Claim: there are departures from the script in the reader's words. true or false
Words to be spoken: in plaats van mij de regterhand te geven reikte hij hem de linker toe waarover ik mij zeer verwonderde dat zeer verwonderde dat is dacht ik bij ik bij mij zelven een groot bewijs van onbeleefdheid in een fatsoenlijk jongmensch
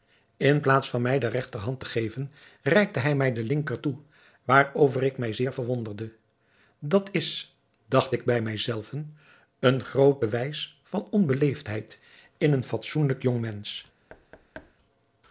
true